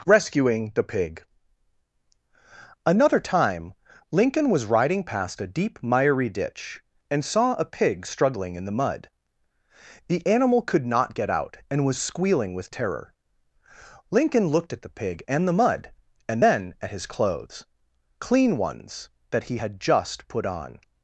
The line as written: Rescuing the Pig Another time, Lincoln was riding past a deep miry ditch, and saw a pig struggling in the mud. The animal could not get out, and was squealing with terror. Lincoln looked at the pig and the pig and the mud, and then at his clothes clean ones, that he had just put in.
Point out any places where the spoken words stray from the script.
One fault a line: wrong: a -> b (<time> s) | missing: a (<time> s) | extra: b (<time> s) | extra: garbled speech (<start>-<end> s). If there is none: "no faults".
missing: pig and the (15.6 s)
wrong: in -> on (20.4 s)